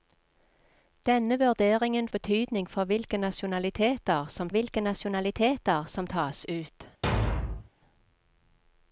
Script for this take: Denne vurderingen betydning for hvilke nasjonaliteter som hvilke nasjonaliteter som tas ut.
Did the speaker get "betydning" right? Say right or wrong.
right